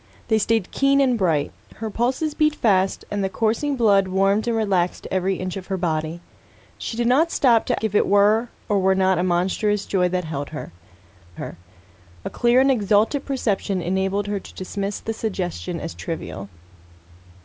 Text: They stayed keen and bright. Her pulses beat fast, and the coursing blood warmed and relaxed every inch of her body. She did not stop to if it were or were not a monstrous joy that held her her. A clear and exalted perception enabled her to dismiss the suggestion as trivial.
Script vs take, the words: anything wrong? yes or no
no